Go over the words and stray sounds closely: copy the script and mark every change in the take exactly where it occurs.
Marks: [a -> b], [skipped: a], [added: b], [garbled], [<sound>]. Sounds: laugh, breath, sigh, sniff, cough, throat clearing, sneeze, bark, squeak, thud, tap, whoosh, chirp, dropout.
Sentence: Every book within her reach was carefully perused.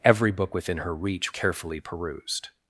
Every book within her reach [skipped: was] carefully perused.